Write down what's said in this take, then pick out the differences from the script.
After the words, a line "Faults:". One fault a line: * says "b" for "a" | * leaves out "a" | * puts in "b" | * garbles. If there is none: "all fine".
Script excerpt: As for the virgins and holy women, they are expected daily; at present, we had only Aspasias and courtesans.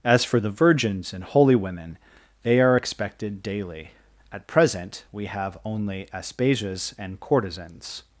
As for the virgins and holy women, they are expected daily; at present, we have only Aspasias and courtesans.
Faults:
* says "have" for "had"